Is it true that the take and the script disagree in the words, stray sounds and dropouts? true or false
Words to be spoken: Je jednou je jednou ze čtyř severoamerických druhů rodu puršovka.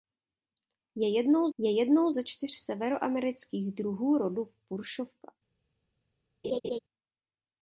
true